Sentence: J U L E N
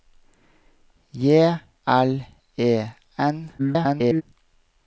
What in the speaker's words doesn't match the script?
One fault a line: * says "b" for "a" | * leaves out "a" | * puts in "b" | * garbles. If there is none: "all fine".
* leaves out "U"
* garbles